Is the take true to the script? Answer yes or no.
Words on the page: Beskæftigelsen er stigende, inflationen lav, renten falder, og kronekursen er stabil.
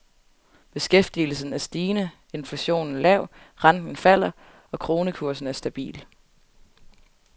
yes